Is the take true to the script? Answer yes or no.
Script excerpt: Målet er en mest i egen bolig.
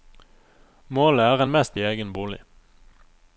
yes